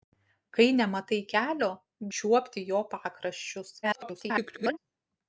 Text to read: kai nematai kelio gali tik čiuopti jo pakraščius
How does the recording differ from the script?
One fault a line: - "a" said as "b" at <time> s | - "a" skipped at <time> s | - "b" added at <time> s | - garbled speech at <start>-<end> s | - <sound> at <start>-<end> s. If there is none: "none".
- "gali tik" skipped at 1.7 s
- garbled speech at 3.8-4.8 s